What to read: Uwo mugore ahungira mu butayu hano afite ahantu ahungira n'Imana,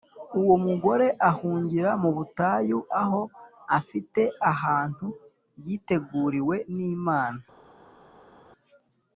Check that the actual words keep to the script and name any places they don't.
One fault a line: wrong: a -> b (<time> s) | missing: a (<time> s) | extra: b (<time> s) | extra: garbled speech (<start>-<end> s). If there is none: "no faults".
wrong: hano -> aho (3.0 s)
wrong: ahungira -> yiteguriwe (5.7 s)